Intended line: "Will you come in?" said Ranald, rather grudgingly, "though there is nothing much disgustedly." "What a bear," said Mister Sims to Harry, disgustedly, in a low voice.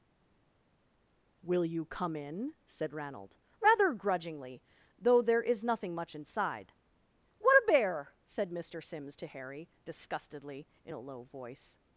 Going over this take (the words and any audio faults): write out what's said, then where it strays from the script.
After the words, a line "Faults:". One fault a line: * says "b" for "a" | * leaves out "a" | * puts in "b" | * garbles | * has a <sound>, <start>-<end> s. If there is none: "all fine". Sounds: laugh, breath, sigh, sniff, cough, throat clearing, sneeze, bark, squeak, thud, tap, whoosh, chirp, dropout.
"Will you come in?" said Ranald, rather grudgingly, "though there is nothing much inside." "What a bear," said Mister Sims to Harry, disgustedly, in a low voice.
Faults:
* says "inside" for "disgustedly"